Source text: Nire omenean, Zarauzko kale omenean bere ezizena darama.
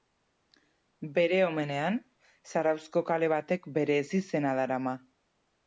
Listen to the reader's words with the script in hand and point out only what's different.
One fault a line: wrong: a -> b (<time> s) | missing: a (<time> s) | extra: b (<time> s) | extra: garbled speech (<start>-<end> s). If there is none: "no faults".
wrong: Nire -> Bere (1.2 s)
wrong: omenean -> batek (3.4 s)